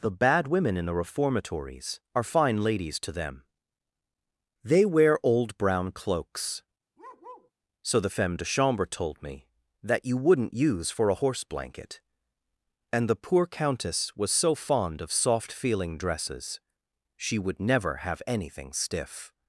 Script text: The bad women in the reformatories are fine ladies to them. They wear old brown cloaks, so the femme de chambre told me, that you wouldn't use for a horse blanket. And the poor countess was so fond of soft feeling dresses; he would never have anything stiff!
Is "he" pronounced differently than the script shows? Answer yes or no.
yes